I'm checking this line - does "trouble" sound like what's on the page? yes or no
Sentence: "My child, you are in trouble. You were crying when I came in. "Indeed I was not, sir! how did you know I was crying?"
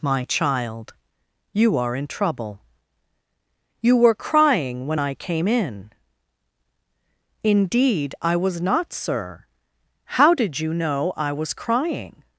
yes